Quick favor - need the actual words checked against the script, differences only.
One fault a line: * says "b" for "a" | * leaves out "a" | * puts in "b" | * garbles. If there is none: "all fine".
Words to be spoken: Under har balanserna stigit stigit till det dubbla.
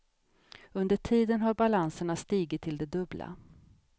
* puts in "tiden"
* leaves out "stigit"